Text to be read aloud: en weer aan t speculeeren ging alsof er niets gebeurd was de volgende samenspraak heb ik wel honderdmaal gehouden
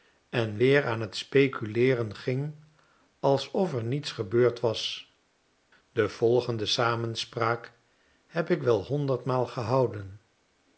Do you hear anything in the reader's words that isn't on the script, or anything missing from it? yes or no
no